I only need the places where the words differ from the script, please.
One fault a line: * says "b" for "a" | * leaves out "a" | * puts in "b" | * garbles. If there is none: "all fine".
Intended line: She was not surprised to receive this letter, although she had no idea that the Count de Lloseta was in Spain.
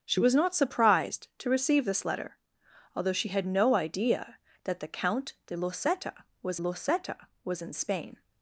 * puts in "Lloseta was"